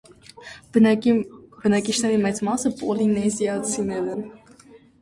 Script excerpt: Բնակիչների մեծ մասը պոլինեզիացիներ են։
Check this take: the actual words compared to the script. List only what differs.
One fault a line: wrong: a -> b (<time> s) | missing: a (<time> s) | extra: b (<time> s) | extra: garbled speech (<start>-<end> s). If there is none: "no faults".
no faults